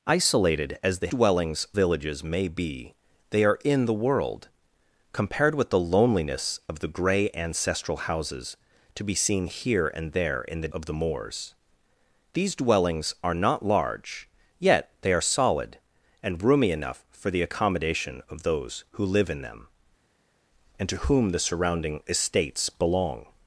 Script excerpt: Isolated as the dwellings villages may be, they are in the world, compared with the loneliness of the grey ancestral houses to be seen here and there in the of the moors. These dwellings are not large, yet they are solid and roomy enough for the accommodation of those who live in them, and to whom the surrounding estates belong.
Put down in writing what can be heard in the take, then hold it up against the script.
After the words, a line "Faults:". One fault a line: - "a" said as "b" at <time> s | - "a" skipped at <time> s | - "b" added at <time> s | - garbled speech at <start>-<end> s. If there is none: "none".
Isolated as the dwellings villages may be, they are in the world, compared with the loneliness of the grey ancestral houses to be seen here and there in the of the moors. These dwellings are not large, yet they are solid and roomy enough for the accommodation of those who live in them, and to whom the surrounding estates belong.
Faults:
none